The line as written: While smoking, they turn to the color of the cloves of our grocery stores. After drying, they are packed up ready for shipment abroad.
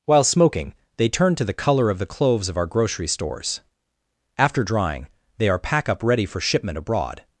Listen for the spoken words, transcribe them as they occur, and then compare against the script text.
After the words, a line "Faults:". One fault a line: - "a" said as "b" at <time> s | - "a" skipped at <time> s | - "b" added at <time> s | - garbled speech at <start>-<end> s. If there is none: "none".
While smoking, they turn to the color of the cloves of our grocery stores. After drying, they are pack up ready for shipment abroad.
Faults:
- "packed" said as "pack" at 5.6 s